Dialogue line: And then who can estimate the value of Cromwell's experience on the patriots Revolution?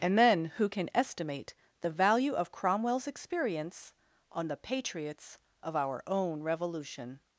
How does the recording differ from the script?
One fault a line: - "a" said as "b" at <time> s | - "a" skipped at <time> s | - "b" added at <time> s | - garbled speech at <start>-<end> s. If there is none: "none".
- "of our own" added at 5.6 s